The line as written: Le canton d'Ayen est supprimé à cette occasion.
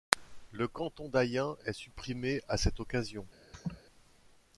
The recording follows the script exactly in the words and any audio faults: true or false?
false